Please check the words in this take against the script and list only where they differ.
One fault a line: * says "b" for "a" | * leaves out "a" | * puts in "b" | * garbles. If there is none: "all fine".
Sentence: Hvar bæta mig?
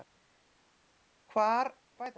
all fine